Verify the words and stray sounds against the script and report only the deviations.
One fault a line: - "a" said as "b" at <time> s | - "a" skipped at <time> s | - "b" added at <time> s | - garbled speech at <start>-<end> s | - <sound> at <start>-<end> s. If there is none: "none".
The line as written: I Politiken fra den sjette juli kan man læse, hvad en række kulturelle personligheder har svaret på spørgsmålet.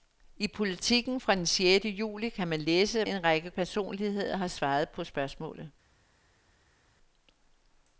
- "hvad" skipped at 3.0 s
- "kulturelle" skipped at 3.5 s